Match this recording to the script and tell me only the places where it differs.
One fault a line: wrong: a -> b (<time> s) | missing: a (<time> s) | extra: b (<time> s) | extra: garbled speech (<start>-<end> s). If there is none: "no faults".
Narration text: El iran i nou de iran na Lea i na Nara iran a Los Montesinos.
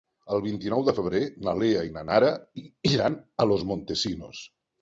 wrong: iran -> vint (0.5 s)
wrong: iran -> febrer (1.0 s)